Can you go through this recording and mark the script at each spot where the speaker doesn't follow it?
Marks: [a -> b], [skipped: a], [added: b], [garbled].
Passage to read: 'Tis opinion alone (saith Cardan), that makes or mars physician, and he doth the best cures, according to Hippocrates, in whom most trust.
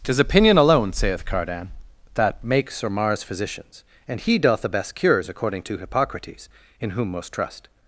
'Tis opinion alone (saith Cardan), that makes or mars [physician, -> physicians] and he doth the best cures, according to Hippocrates, in whom most trust.